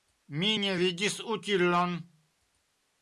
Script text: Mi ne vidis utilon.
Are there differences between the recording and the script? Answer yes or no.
no